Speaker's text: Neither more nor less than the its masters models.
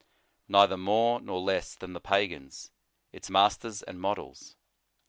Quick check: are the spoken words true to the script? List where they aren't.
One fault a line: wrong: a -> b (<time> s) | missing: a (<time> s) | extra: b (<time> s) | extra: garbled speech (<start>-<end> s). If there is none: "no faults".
extra: pagans (2.0 s)
extra: and (3.8 s)